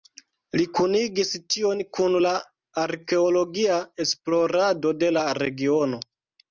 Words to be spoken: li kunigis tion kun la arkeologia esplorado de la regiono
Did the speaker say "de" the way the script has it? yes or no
yes